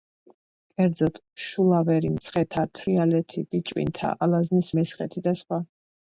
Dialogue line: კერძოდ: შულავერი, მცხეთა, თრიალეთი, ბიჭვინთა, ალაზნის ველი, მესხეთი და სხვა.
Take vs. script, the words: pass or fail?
fail